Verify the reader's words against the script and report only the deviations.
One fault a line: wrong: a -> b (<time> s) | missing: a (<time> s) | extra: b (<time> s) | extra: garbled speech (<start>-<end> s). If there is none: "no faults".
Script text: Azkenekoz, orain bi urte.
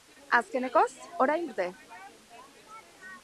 missing: bi (1.4 s)